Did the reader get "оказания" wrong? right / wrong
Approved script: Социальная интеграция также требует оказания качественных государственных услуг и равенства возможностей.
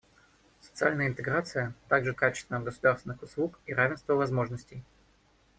wrong